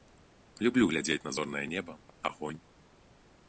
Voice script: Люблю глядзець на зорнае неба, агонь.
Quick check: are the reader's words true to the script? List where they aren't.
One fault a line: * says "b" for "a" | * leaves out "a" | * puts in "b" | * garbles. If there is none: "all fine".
all fine